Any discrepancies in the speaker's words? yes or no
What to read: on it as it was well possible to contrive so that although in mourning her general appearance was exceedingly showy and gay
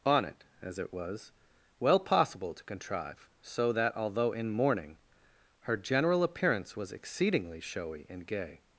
no